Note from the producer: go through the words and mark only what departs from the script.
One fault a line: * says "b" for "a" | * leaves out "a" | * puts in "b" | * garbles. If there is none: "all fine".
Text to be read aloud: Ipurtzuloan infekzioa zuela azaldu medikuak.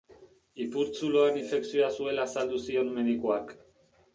* puts in "zion"